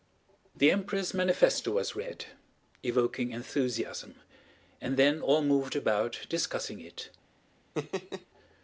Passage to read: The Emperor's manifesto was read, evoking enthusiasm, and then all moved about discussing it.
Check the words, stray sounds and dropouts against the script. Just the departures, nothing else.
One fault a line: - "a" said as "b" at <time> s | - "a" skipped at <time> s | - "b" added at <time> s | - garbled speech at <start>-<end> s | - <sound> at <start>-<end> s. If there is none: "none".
- laugh at 7.7-8.3 s